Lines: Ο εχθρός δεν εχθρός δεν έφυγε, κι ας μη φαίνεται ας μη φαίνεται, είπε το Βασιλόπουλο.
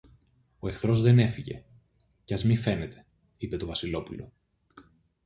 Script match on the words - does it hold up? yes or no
no